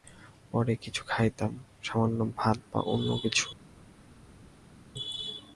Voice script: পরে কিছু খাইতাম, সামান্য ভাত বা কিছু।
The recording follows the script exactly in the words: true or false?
false